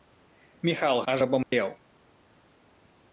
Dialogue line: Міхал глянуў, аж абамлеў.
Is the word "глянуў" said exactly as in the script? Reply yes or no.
no